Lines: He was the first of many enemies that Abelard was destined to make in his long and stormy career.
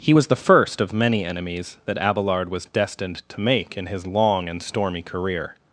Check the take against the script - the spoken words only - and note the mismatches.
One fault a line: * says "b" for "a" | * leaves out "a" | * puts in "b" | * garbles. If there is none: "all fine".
all fine